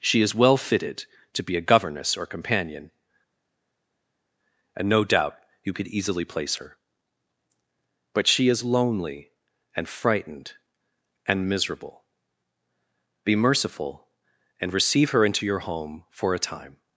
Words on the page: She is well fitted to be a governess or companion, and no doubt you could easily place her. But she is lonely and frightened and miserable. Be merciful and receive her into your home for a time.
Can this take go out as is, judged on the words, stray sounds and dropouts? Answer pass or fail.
pass